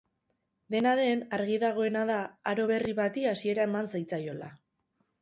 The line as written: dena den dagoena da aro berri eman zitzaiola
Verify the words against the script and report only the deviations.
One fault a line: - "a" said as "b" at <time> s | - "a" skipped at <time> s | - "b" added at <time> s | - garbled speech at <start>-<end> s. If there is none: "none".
- "argi" added at 1.4 s
- "bati hasiera" added at 3.0 s